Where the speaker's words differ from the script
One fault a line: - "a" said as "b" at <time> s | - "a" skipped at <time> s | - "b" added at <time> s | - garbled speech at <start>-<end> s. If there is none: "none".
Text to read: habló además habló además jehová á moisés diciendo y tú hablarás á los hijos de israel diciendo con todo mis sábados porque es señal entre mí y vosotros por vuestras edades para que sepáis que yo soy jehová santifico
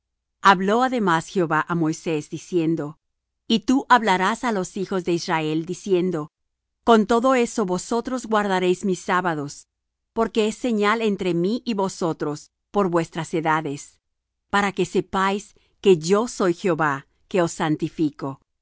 - "habló además" skipped at 1.3 s
- "eso vosotros guardaréis" added at 7.3 s
- "que os" added at 17.3 s